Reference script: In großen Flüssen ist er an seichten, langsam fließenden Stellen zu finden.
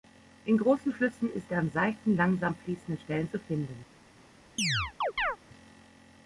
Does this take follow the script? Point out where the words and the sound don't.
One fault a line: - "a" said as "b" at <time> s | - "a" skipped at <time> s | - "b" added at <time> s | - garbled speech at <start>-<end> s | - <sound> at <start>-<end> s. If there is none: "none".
- chirp at 4.6-5.4 s